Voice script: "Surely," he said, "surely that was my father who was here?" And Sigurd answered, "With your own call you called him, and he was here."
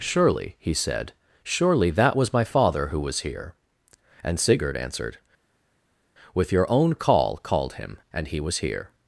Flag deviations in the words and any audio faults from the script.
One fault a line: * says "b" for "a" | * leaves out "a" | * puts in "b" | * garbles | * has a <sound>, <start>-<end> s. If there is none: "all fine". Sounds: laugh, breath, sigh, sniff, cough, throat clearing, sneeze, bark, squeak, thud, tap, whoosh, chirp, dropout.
* leaves out "you"